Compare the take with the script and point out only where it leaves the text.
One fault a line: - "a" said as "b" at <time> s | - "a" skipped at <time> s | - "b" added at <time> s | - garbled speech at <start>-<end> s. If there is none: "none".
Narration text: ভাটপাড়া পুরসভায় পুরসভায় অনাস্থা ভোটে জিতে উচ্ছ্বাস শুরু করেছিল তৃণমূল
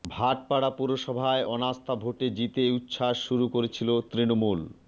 - "পুরসভায়" skipped at 1.4 s